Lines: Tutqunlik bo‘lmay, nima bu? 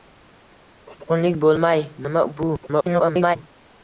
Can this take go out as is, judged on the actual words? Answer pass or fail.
fail